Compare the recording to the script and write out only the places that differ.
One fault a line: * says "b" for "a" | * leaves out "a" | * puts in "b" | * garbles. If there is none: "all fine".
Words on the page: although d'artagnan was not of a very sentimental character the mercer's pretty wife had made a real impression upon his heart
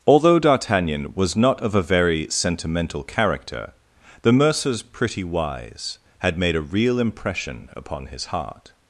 * says "wise" for "wife"